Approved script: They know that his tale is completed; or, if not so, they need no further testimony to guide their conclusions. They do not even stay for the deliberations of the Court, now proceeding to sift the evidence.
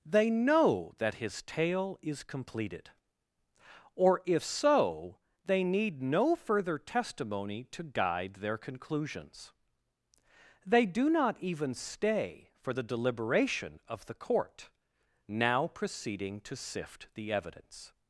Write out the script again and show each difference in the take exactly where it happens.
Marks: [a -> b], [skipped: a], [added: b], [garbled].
They know that his tale is completed; or, if [skipped: not] so, they need no further testimony to guide their conclusions. They do not even stay for the [deliberations -> deliberation] of the Court, now proceeding to sift the evidence.